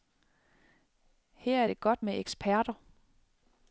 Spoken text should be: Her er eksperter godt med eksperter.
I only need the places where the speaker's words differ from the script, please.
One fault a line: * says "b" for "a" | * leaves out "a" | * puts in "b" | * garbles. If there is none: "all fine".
* says "det" for "eksperter"